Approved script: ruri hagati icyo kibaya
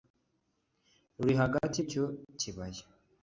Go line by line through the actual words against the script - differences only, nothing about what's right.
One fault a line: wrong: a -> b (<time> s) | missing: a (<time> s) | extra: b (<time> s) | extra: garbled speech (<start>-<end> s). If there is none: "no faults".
no faults